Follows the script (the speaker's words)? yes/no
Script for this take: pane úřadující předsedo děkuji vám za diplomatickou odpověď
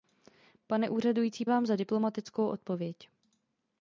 no